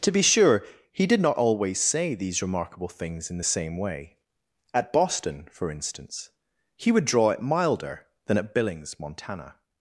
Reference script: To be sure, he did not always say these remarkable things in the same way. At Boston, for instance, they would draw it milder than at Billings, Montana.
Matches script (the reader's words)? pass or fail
fail